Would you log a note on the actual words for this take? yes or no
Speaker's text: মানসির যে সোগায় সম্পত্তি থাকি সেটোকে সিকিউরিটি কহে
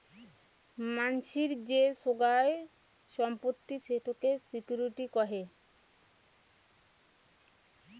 yes